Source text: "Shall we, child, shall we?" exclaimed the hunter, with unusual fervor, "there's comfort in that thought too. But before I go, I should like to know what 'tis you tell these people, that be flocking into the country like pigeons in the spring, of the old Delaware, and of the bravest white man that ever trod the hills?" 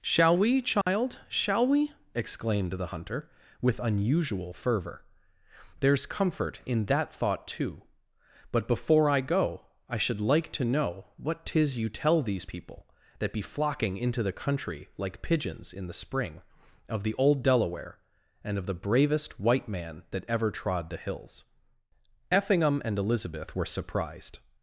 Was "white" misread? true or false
false